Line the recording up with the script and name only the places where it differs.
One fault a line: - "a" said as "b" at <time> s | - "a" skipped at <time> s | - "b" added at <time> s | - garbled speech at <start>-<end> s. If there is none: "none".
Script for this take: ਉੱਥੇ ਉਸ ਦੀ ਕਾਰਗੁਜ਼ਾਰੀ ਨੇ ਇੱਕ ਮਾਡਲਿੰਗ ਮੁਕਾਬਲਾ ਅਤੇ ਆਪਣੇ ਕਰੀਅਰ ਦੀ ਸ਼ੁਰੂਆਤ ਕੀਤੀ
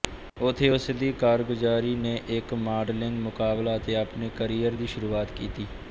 none